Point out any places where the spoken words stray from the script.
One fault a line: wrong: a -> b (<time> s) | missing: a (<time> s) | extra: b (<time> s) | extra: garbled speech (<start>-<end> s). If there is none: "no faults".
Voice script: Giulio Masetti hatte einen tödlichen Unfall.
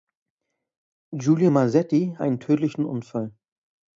missing: hatte (2.1 s)